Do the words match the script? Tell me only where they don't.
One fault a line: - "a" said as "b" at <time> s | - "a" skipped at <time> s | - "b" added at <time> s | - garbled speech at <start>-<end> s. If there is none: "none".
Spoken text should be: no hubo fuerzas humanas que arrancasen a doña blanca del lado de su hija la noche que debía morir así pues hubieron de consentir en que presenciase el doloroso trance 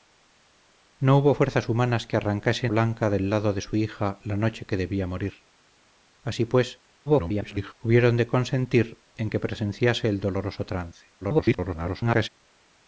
- "a doña" skipped at 2.7 s
- garbled speech at 7.1-7.7 s
- garbled speech at 11.2-12.3 s